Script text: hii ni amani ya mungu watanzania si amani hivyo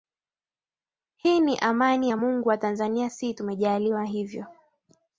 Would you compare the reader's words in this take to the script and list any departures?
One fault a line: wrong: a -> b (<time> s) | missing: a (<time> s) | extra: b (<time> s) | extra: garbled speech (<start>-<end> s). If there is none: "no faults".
wrong: amani -> tumejaliwa (3.3 s)